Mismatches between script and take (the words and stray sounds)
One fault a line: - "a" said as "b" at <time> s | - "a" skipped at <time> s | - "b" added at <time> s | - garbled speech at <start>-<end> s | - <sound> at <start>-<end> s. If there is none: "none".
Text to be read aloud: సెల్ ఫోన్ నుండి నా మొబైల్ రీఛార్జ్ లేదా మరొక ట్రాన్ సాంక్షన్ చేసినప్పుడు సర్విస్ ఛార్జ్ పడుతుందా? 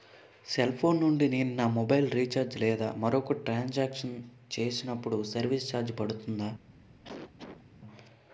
- "నేను" added at 1.3 s
- cough at 7.0-7.6 s